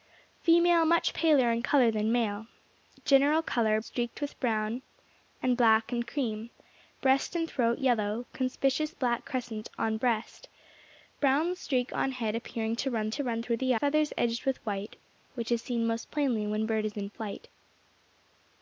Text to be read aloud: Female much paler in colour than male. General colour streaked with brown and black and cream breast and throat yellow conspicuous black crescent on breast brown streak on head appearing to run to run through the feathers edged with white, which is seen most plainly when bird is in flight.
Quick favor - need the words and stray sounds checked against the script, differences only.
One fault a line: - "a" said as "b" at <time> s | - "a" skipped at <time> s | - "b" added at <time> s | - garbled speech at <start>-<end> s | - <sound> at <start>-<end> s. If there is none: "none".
none